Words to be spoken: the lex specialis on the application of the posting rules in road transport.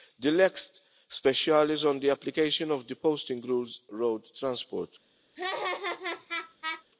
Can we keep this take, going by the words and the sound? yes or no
no